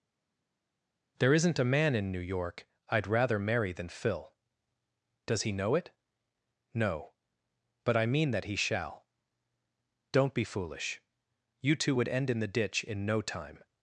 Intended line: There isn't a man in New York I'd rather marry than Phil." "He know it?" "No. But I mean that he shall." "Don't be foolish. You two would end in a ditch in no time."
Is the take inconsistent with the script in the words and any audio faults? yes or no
yes